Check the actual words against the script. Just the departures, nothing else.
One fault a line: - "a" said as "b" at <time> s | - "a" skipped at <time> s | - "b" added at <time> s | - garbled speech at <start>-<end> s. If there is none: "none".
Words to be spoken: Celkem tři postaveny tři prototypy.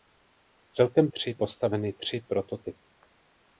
none